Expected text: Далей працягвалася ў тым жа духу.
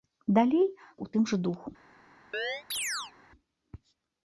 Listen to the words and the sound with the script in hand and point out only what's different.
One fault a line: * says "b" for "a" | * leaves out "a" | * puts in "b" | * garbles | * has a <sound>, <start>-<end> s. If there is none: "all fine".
* leaves out "працягвалася"
* has a chirp, 2.3-3.1 s